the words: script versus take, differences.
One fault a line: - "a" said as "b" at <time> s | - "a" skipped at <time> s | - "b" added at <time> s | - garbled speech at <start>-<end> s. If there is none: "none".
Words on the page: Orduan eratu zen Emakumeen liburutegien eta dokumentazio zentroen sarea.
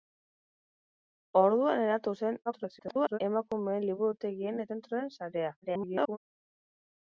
- garbled speech at 2.5-3.2 s
- "eta dokumentazio" skipped at 4.6 s
- garbled speech at 5.6-6.2 s